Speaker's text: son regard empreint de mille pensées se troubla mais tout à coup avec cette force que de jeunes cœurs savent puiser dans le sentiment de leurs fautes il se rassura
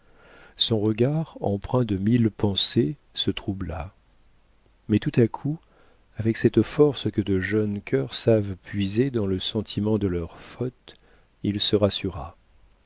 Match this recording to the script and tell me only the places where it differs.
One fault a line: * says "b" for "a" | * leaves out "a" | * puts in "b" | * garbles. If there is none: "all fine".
all fine